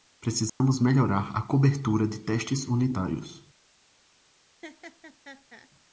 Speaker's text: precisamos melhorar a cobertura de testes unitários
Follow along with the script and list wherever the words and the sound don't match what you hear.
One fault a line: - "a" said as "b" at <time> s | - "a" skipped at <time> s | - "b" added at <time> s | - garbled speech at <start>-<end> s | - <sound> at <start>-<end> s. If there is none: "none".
- dropout at 0.5-0.6 s
- laugh at 4.6-5.7 s